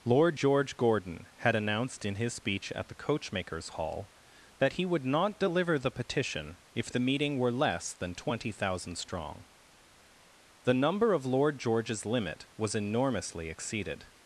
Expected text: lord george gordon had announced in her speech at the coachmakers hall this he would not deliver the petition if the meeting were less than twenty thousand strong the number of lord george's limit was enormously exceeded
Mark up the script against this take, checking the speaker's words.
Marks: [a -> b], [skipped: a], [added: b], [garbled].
lord george gordon had announced in [her -> his] speech at the coachmakers hall [this -> that] he would not deliver the petition if the meeting were less than twenty thousand strong the number of lord george's limit was enormously exceeded